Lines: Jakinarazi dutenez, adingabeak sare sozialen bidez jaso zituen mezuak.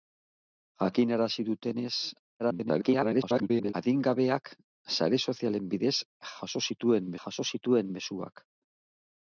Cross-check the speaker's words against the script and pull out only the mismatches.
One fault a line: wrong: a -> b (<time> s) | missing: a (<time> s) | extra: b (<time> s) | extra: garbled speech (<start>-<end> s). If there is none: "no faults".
extra: garbled speech (2.4-3.7 s)
extra: jaso zituen (7.2 s)